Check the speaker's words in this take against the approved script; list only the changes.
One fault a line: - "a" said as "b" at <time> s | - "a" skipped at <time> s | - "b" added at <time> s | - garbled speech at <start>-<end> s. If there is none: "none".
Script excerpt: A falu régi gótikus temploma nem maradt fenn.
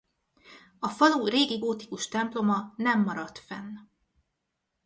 none